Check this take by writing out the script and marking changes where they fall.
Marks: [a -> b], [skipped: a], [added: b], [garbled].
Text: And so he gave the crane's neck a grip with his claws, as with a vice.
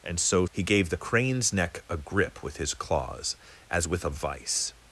And so he gave the crane's neck a grip with his claws, as with a vice.